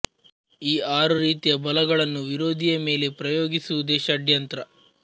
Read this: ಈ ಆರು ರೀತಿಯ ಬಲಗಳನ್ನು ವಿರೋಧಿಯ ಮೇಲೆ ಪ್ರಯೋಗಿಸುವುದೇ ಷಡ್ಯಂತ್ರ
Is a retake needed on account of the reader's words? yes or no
no